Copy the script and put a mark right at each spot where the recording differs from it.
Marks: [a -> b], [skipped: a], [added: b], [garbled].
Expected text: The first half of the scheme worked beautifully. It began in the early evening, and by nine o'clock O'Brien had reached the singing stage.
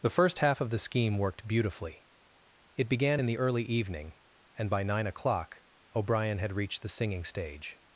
The first half of the scheme worked beautifully. It began in the early evening, and by nine o'clock O'Brien had reached the singing stage.